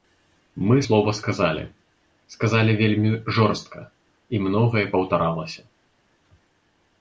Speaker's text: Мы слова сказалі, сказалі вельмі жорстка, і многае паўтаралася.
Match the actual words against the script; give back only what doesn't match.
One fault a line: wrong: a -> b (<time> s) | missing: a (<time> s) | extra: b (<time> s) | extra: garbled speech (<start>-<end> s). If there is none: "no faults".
no faults